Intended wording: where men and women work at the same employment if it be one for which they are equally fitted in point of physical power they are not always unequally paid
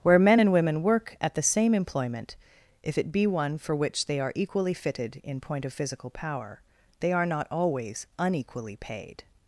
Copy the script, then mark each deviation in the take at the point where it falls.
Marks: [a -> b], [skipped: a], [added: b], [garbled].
where men and women work at the same employment if it be one for which they are equally fitted in point of physical power they are not always unequally paid